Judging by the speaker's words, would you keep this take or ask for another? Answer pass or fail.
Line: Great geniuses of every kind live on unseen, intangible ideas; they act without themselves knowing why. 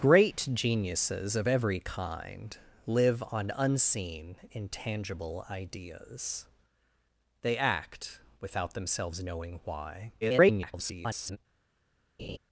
fail